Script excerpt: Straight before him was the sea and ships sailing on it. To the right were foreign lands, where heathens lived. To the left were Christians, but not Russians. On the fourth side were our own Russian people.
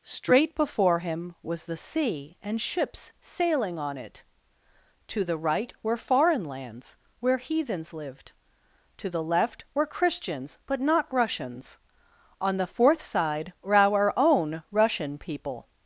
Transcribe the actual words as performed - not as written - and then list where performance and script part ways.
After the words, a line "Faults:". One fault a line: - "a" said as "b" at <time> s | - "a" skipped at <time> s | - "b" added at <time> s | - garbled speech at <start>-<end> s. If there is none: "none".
Straight before him was the sea and ships sailing on it. To the right were foreign lands, where heathens lived. To the left were Christians, but not Russians. On the fourth side were our own Russian people.
Faults:
none